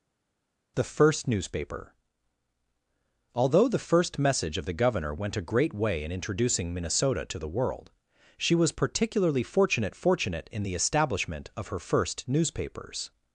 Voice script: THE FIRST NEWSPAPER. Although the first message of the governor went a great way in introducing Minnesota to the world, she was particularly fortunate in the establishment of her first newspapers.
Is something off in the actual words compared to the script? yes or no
yes